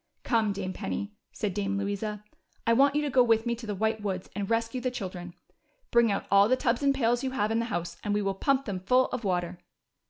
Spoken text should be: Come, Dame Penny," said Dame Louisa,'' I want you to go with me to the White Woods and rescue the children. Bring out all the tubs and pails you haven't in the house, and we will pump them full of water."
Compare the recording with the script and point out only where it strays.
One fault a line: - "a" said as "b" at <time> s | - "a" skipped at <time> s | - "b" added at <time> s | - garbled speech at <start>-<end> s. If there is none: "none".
- "haven't" said as "have" at 7.3 s